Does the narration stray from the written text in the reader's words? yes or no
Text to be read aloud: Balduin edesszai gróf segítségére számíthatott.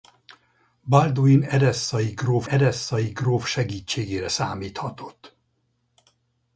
yes